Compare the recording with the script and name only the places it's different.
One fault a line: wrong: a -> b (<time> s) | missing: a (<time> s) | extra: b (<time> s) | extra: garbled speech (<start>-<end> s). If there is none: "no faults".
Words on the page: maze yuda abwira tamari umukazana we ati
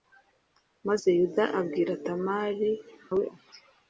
missing: umukazana (2.7 s)